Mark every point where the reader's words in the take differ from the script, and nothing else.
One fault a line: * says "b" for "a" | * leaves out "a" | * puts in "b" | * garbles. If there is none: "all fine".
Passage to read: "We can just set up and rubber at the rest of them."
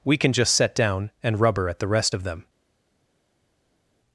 * says "down" for "up"